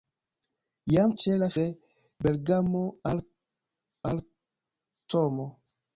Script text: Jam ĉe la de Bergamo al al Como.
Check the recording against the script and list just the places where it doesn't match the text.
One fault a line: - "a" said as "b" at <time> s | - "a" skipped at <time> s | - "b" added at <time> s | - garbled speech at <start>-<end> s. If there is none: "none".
none